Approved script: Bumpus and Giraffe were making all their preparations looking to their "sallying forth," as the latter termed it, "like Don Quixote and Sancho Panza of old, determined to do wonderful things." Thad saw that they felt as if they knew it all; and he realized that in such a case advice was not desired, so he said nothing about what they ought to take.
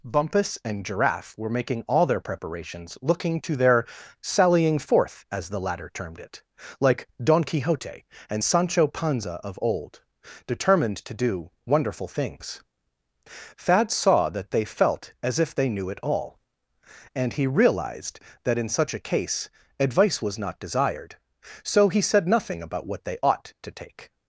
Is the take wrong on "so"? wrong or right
right